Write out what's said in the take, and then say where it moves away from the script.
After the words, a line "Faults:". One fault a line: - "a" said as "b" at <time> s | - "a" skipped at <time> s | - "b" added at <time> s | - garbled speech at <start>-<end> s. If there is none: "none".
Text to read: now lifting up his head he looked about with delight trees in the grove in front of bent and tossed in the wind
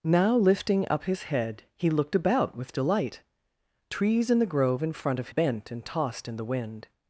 now lifting up his head he looked about with delight trees in the grove in front of bent and tossed in the wind
Faults:
none